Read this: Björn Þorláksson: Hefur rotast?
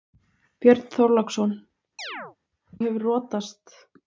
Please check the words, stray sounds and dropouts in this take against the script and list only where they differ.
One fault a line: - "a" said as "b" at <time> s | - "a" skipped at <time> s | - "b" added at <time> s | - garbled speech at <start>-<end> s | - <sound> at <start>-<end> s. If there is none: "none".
- chirp at 2.0-2.4 s